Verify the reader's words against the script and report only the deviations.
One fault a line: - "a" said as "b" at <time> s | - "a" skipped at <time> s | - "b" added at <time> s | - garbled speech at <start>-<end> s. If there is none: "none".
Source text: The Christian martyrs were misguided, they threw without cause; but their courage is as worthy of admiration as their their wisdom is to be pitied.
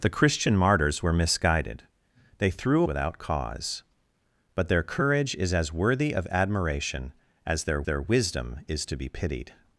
none